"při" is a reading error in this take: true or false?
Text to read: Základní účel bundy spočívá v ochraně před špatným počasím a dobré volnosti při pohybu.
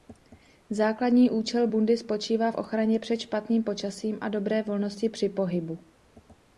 false